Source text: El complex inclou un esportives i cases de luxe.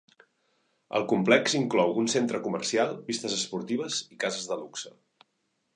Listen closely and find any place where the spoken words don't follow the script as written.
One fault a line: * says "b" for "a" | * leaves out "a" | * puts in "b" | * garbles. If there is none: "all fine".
* puts in "centre comercial pistes"